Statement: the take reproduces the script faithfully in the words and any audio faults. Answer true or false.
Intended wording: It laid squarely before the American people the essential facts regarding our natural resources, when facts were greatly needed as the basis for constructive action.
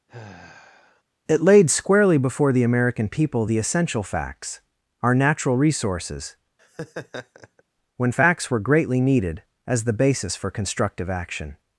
false